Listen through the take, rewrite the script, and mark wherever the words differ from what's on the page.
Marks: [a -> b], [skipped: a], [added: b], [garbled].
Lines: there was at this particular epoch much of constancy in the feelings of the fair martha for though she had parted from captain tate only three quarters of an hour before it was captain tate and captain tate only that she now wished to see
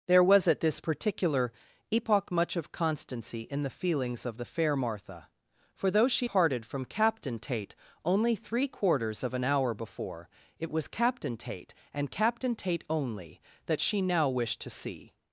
there was at this particular epoch much of constancy in the feelings of the fair martha for though she [skipped: had] parted from captain tate only three quarters of an hour before it was captain tate and captain tate only that she now wished to see